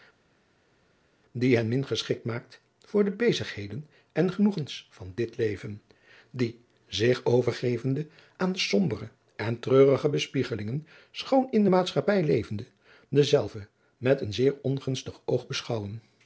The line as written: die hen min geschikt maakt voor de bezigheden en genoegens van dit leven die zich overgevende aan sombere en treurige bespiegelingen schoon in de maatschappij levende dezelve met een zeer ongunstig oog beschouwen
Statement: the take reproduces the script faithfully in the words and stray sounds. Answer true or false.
true